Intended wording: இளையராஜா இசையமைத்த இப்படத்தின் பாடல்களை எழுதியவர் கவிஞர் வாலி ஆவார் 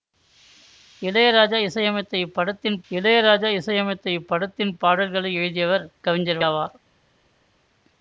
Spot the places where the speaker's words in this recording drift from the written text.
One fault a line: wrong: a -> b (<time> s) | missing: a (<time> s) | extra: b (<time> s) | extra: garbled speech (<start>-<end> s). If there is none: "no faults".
extra: இளையராஜா இசையமைத்த இப்படத்தின் (2.9 s)
missing: வாலி (6.4 s)